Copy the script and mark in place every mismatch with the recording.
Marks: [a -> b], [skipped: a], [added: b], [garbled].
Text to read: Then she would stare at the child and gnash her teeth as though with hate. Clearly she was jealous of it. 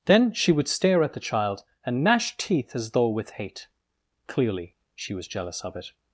Then she would stare at the child and gnash [skipped: her] teeth as though with hate. Clearly she was jealous of it.